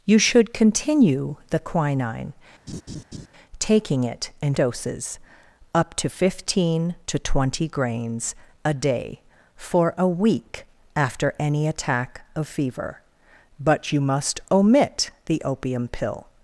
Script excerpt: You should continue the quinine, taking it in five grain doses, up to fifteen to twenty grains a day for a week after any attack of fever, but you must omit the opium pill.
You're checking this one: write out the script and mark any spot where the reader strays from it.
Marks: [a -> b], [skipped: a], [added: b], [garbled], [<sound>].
You should continue the quinine, [laugh] taking it in [skipped: five grain] doses, up to fifteen to twenty grains a day for a week after any attack of fever, but you must omit the opium pill.